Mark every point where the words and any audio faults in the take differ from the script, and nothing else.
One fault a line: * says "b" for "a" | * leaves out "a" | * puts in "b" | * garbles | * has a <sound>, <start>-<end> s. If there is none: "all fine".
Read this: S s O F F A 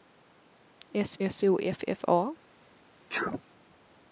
* has a sneeze, 3.1-3.4 s